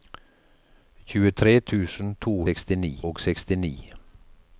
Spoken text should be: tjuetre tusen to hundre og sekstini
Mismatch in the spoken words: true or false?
true